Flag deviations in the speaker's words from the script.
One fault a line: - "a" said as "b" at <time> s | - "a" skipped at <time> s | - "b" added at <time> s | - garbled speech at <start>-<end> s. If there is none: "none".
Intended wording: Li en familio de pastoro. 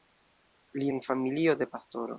none